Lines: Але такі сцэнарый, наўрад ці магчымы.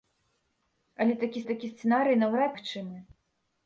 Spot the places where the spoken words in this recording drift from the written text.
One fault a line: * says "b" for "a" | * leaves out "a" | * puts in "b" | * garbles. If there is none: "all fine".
* puts in "такі"
* leaves out "ці"